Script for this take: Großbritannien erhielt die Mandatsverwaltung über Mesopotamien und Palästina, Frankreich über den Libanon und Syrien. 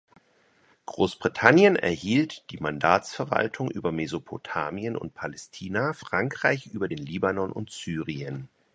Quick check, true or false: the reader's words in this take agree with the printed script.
true